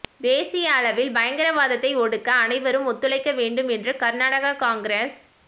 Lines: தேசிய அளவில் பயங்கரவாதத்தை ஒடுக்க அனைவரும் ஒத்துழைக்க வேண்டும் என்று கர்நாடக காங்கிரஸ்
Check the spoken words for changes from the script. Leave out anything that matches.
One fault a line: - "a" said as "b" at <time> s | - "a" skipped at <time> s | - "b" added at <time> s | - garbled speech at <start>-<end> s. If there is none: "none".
none